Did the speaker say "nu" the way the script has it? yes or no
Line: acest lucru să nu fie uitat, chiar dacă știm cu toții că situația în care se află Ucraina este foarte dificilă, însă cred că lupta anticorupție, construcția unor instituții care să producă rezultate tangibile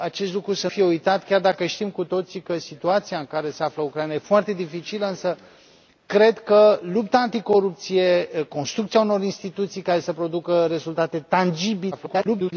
no